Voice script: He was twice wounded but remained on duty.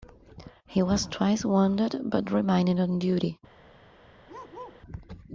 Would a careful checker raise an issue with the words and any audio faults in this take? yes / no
yes